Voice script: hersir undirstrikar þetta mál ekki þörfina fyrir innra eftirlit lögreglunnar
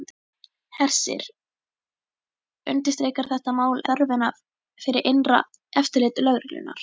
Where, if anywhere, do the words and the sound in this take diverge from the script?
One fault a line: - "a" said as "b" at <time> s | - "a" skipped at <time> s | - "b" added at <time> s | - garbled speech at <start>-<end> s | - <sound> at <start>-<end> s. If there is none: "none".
- "ekki" skipped at 3.8 s